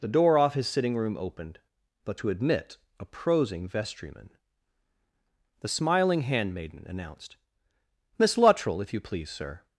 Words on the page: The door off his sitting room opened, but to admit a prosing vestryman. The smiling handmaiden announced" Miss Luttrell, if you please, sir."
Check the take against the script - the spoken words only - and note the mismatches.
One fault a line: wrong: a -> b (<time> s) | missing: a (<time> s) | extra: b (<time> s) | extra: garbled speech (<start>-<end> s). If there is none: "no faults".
no faults